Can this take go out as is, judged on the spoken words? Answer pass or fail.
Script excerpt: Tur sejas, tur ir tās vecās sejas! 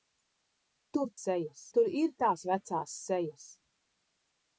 pass